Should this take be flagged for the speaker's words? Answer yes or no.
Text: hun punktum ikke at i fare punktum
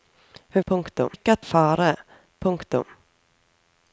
no